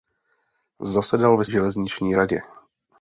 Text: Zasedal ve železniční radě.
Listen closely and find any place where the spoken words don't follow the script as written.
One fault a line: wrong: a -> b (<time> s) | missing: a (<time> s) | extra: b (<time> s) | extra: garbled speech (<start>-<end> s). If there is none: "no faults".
no faults